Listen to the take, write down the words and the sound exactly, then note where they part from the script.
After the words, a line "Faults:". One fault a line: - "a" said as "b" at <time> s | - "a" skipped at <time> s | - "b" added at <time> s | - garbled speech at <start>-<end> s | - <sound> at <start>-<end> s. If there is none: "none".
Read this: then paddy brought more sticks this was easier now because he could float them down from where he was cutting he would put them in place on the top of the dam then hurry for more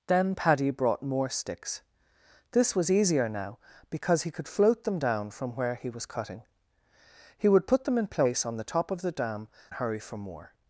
then paddy brought more sticks this was easier now because he could float them down from where he was cutting he would put them in place on the top of the dam hurry for more
Faults:
- "then" skipped at 9.5 s